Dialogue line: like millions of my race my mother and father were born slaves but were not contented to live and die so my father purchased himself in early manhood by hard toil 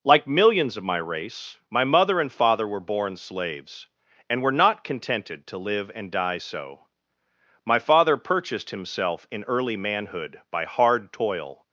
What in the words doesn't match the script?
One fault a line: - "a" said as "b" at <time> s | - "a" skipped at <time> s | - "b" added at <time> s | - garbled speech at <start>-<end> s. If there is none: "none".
- "but" said as "and" at 4.3 s